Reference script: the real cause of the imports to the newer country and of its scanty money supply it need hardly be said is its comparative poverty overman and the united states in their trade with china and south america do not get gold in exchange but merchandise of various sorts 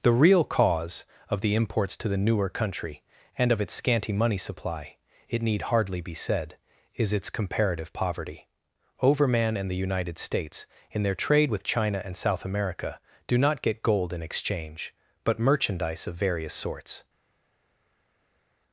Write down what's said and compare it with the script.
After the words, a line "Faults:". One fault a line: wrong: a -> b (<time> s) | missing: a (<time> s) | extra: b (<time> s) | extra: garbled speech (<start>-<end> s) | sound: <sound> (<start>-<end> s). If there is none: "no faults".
the real cause of the imports to the newer country and of its scanty money supply it need hardly be said is its comparative poverty overman and the united states in their trade with china and south america do not get gold in exchange but merchandise of various sorts
Faults:
no faults